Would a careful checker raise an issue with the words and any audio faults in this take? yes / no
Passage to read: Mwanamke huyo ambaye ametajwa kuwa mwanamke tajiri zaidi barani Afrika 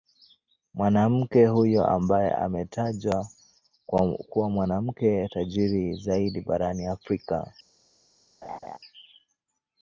yes